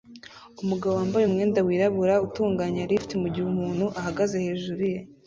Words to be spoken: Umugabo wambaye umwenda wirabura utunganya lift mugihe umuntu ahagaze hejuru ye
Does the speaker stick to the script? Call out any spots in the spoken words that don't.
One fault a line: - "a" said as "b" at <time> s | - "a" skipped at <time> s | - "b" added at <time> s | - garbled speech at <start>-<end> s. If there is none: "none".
none